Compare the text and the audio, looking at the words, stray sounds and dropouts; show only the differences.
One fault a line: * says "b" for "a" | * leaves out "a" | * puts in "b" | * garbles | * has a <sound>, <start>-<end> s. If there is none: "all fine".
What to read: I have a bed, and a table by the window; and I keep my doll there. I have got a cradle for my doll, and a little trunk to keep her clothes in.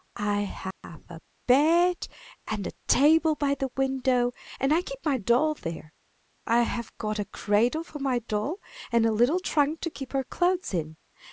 * has a dropout, 0.7-0.8 s